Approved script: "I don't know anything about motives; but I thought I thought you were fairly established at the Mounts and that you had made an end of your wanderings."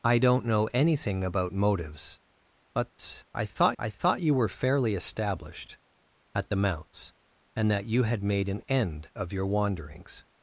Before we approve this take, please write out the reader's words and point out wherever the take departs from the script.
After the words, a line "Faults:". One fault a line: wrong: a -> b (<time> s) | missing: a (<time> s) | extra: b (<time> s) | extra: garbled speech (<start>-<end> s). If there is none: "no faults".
"I don't know anything about motives; but I thought I thought you were fairly established at the Mounts and that you had made an end of your wanderings."
Faults:
no faults